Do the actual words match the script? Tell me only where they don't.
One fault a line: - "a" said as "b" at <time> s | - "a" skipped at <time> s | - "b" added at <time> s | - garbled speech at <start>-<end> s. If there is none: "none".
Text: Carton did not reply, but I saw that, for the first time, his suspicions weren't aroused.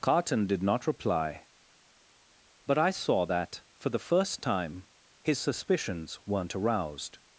none